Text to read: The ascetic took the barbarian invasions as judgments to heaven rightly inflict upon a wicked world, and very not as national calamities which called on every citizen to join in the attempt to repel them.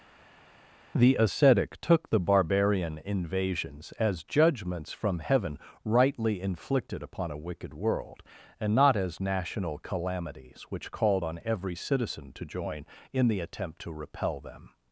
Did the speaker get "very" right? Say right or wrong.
wrong